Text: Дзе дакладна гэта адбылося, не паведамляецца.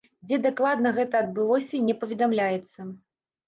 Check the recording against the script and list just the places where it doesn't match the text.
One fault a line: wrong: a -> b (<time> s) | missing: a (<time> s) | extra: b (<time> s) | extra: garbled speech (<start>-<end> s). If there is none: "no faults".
no faults